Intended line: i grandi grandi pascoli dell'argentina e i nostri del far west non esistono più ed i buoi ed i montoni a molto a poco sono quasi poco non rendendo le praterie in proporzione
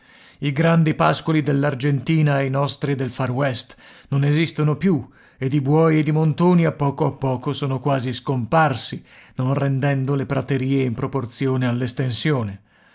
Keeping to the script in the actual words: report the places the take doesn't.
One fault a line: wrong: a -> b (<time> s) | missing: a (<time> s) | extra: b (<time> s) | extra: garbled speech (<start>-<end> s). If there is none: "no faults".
missing: grandi (0.9 s)
wrong: molto -> poco (6.7 s)
wrong: poco -> scomparsi (8.1 s)